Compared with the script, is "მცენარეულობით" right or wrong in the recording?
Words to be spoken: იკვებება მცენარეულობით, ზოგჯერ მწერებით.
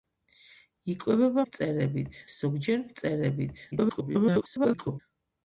wrong